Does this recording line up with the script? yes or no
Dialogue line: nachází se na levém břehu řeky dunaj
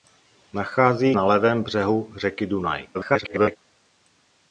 no